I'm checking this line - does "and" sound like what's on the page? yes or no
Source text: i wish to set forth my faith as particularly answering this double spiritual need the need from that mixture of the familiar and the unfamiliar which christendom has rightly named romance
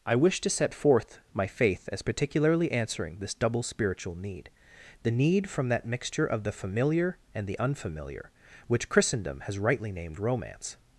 yes